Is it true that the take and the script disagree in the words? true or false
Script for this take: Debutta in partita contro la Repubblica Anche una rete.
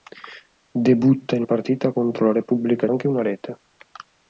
false